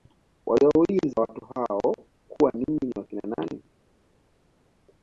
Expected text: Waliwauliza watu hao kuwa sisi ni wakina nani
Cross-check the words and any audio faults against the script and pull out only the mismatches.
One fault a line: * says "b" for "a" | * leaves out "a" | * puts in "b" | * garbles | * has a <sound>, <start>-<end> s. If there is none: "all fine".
* says "ninyi" for "sisi"